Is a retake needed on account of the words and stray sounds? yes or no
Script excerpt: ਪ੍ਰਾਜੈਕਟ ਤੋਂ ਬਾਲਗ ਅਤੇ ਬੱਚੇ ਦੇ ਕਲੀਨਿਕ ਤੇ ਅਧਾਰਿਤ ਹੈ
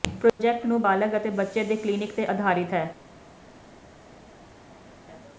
yes